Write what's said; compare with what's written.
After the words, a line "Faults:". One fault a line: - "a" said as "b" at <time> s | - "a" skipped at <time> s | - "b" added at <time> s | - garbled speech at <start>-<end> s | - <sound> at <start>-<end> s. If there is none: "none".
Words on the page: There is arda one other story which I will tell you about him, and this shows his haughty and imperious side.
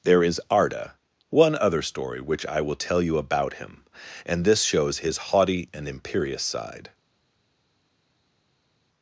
There is arda one other story which I will tell you about him, and this shows his haughty and imperious side.
Faults:
none